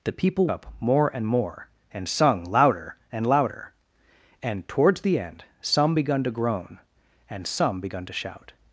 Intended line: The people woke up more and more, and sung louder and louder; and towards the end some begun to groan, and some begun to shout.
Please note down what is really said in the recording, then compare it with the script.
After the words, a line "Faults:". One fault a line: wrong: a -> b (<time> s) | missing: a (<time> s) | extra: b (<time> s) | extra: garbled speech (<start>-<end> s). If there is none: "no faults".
The people up more and more, and sung louder and louder; and towards the end some begun to groan, and some begun to shout.
Faults:
missing: woke (0.5 s)